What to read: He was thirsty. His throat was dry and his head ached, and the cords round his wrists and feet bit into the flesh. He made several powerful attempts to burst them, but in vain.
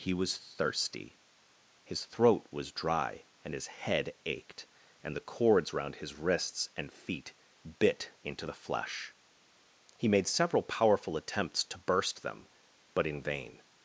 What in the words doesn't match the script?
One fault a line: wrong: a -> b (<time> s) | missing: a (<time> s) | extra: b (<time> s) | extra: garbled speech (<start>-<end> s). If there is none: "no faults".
no faults